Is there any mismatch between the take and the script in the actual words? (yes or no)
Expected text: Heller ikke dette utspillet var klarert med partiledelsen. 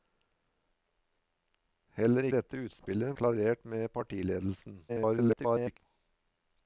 yes